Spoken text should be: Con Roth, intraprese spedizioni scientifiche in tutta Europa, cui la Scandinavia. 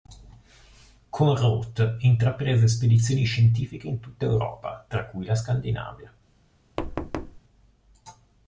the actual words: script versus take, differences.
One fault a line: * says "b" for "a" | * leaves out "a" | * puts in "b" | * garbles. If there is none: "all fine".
* puts in "tra"